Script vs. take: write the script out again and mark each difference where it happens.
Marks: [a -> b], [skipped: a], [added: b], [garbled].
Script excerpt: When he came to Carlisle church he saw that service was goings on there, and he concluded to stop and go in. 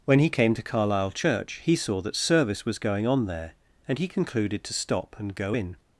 When he came to Carlisle church he saw that service was [goings -> going] on there, and he concluded to stop and go in.